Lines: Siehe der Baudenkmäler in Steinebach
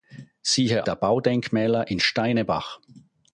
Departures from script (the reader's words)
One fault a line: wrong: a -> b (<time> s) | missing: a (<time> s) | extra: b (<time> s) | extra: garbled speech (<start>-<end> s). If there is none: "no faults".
no faults